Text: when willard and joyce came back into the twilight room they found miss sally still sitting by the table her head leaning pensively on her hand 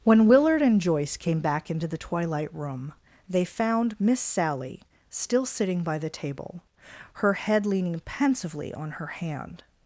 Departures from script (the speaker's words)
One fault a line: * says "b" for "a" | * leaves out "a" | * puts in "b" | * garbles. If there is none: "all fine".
all fine